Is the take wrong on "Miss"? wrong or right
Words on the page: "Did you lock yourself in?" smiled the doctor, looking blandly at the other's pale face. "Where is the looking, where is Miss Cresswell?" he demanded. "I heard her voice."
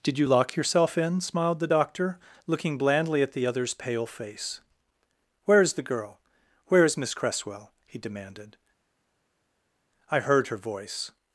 right